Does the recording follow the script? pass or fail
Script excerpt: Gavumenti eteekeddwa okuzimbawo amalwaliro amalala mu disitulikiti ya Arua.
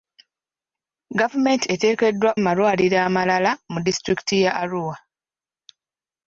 fail